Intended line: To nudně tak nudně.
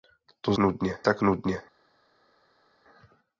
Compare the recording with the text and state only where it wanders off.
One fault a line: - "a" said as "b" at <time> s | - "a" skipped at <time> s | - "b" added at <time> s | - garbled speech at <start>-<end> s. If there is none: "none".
none